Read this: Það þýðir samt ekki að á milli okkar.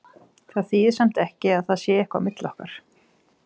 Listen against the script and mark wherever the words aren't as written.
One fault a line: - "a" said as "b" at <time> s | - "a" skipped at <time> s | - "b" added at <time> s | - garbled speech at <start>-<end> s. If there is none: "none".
- "það sé eitthvað" added at 1.7 s